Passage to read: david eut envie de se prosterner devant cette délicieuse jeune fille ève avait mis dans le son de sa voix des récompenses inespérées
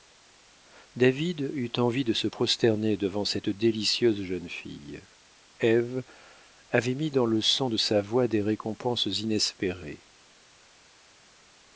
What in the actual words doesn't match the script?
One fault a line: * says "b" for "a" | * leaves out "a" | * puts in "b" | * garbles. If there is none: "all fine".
all fine